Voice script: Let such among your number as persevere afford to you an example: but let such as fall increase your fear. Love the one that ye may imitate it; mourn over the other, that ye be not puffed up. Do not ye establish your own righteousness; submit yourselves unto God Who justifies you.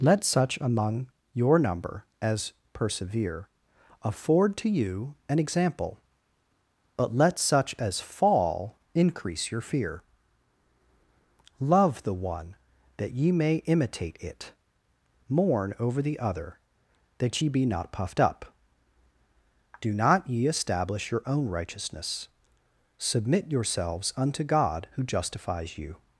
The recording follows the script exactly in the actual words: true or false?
true